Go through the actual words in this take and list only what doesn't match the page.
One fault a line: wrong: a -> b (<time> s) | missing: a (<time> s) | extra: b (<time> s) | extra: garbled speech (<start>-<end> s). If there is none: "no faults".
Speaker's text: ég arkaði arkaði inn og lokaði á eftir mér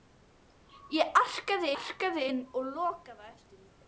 no faults